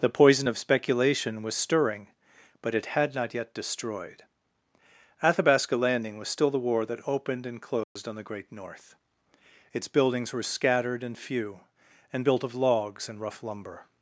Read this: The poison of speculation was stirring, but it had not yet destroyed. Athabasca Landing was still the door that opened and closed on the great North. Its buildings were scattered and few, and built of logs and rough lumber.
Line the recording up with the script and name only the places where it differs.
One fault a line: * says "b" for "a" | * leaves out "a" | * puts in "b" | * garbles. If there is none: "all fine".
* says "war" for "door"